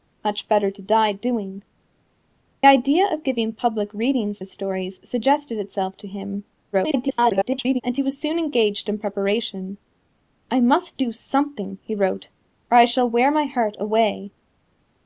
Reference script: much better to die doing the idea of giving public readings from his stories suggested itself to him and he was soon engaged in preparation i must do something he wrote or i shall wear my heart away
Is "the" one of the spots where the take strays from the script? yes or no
yes